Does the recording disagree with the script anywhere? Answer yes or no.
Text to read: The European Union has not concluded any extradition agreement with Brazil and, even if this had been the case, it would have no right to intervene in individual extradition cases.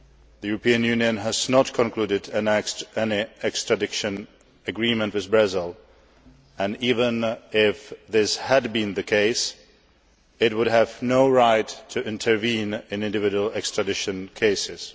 no